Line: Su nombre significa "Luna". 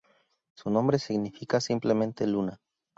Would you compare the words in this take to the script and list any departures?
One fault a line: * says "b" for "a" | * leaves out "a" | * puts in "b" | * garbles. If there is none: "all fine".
* puts in "simplemente"